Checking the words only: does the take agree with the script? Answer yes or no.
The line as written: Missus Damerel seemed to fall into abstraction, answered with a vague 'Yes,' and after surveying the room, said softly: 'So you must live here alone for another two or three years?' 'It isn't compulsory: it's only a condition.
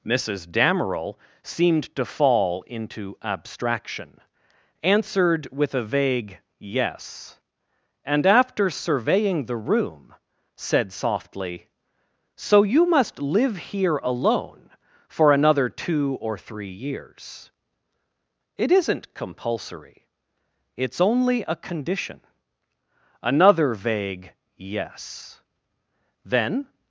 no